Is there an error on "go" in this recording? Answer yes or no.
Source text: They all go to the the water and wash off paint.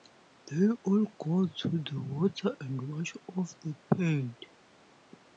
no